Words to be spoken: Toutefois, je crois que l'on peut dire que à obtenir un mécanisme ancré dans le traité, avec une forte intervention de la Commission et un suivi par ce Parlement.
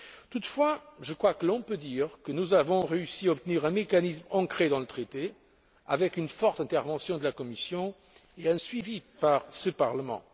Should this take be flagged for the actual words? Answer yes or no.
yes